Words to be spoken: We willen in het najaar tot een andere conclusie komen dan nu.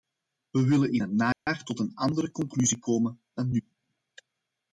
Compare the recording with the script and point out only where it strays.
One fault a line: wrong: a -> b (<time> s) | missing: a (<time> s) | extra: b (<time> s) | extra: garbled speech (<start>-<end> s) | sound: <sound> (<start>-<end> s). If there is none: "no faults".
sound: dropout (1.3-1.5 s)